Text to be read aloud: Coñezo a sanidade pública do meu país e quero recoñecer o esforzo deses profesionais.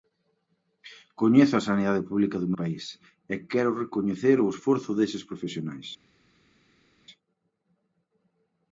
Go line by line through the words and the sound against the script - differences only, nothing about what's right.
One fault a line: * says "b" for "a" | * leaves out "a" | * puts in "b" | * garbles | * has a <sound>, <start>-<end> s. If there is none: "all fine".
* leaves out "meu"